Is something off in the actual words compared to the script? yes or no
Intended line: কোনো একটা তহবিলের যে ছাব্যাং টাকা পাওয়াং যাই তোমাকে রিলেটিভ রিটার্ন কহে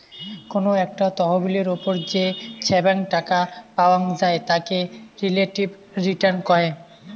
yes